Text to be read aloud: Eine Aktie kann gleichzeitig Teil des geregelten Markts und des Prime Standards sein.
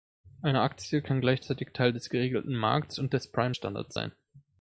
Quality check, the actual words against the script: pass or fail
pass